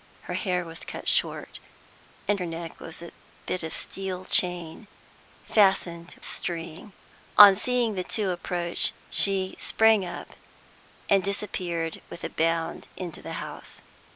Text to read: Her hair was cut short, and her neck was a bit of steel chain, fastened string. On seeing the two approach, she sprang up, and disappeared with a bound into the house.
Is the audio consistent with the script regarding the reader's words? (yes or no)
yes